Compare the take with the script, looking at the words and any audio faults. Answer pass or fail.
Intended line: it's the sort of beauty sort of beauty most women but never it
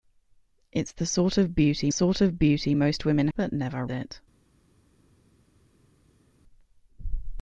pass